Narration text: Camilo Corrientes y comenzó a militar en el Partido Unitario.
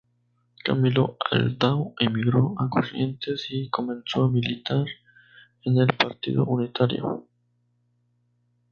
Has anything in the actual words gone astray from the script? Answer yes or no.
yes